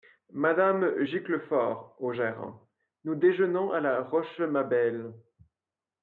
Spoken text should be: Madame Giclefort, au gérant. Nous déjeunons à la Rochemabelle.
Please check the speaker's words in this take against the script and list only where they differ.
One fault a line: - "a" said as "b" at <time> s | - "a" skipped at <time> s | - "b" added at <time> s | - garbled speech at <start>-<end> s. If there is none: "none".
none